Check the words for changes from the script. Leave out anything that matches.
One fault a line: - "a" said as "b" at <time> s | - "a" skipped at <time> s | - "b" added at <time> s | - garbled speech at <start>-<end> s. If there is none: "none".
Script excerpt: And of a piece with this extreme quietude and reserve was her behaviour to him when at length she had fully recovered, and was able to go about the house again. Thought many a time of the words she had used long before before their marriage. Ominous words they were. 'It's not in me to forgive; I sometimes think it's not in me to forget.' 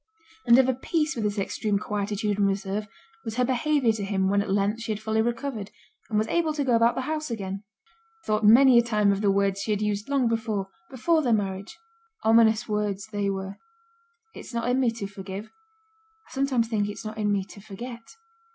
none